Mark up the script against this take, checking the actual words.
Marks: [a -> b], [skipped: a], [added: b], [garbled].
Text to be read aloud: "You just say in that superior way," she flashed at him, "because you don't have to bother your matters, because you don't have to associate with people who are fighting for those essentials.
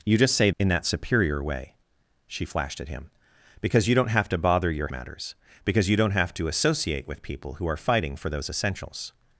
"You just say in that superior way," she flashed at him, "because you don't have to bother your matters, because you don't have to associate with people who are fighting for those essentials.